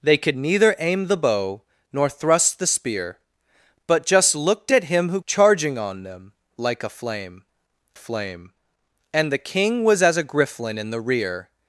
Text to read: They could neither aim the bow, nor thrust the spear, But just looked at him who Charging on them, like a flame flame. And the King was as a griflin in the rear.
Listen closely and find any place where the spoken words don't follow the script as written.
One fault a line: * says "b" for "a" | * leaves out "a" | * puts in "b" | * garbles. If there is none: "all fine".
all fine